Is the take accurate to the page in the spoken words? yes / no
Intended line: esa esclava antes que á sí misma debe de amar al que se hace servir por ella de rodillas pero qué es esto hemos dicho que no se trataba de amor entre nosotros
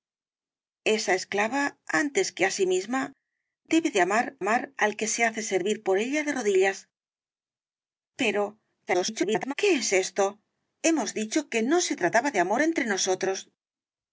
no